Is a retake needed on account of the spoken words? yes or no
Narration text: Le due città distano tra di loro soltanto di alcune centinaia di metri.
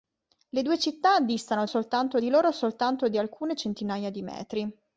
yes